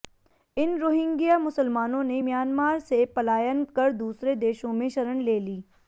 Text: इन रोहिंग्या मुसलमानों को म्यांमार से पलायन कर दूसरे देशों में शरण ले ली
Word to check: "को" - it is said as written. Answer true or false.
false